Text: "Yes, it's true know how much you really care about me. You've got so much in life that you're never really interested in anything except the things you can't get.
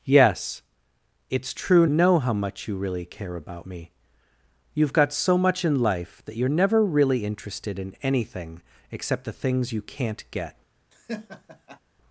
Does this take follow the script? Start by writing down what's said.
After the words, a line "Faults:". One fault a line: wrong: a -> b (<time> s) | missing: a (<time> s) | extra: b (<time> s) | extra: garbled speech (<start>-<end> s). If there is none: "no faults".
"Yes, it's true know how much you really care about me. You've got so much in life that you're never really interested in anything except the things you can't get.
Faults:
no faults